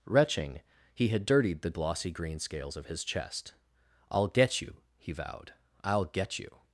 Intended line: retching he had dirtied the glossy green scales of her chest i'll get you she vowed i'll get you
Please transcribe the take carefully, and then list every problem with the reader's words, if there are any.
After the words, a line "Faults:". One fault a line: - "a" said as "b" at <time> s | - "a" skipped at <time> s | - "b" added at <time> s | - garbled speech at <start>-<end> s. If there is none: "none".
retching he had dirtied the glossy green scales of his chest i'll get you he vowed i'll get you
Faults:
- "her" said as "his" at 2.9 s
- "she" said as "he" at 5.0 s